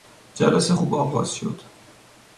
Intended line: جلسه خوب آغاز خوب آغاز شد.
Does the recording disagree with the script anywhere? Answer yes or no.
yes